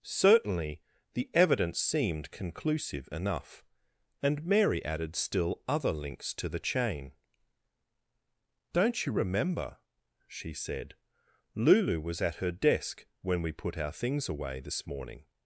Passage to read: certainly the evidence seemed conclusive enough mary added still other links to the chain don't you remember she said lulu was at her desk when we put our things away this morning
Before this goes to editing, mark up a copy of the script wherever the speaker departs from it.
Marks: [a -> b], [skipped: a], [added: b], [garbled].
certainly the evidence seemed conclusive enough [added: and] mary added still other links to the chain don't you remember she said lulu was at her desk when we put our things away this morning